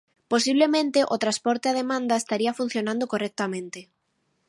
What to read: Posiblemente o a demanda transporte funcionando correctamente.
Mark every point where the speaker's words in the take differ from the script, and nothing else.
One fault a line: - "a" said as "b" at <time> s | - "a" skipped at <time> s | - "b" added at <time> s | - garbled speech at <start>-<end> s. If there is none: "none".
- "transporte" added at 1.2 s
- "transporte" said as "estaría" at 2.2 s